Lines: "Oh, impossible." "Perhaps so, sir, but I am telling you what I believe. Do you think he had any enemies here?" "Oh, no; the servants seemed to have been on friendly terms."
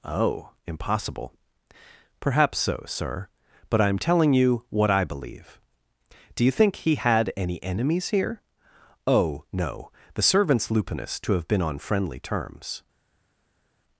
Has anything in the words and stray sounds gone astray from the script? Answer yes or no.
yes